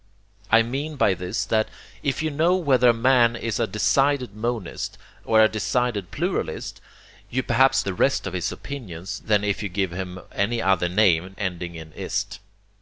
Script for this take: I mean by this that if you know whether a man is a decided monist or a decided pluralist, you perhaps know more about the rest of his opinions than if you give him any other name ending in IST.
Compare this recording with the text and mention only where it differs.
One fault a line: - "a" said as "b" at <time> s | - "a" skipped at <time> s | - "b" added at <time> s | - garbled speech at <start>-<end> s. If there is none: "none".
- "know more about" skipped at 7.8 s